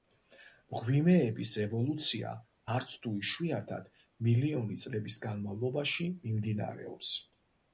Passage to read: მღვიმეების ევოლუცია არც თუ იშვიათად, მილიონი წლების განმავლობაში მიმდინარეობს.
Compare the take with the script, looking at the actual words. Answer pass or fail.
pass